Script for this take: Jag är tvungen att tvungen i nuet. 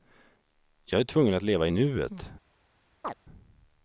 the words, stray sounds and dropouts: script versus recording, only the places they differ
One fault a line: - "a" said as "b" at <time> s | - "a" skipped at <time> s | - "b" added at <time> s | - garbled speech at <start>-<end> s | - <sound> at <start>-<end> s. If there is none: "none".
- "tvungen" said as "leva" at 1.4 s
- chirp at 3.0-3.1 s